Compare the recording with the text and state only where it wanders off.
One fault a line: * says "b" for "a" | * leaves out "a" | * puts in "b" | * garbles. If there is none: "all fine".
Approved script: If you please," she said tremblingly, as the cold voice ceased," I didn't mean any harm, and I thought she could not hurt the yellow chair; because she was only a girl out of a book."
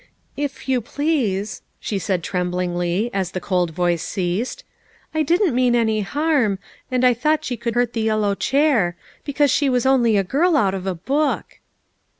* leaves out "not"